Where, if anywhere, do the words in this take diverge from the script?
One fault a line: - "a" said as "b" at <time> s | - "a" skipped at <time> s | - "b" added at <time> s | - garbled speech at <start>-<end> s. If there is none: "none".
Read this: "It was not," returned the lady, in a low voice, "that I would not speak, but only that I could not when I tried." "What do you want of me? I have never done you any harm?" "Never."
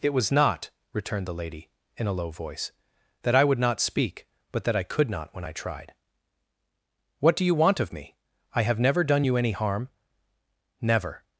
- "only" skipped at 4.6 s